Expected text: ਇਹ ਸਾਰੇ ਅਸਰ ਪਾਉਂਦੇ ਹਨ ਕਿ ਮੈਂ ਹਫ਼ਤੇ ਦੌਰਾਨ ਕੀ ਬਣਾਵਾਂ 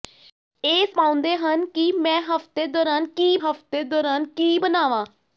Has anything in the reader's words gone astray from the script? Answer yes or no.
yes